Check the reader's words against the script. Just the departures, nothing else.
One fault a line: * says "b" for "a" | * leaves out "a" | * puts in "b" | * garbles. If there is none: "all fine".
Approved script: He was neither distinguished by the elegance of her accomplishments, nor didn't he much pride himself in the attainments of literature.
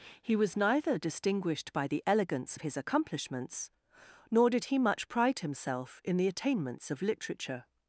* says "his" for "her"
* says "did" for "didn't"